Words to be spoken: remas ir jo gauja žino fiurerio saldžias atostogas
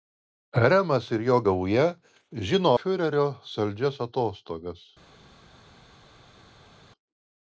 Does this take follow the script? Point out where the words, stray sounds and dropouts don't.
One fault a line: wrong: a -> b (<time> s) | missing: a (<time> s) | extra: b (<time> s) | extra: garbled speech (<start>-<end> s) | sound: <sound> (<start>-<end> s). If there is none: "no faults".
no faults